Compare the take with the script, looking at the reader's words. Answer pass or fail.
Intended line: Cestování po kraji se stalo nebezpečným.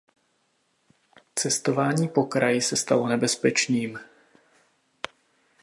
pass